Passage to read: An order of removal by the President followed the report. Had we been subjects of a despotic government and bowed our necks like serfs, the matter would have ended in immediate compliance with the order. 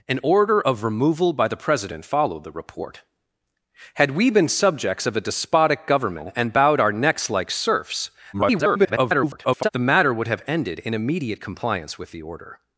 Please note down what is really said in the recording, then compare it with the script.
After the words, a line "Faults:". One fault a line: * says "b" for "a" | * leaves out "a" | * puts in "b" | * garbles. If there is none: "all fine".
An order of removal by the President followed the report. Had we been subjects of a despotic government and bowed our necks like serfs, [garbled] the matter would have ended in immediate compliance with the order.
Faults:
* garbles